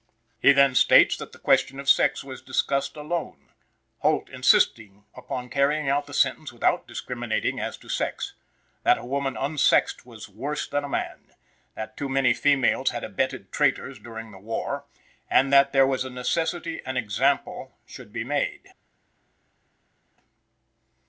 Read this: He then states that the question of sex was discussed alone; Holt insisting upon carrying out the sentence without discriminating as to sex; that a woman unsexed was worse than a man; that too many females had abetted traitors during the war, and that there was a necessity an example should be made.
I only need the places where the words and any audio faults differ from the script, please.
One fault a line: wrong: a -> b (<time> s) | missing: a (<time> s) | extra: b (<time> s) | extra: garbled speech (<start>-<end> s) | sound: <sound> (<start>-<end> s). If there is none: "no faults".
no faults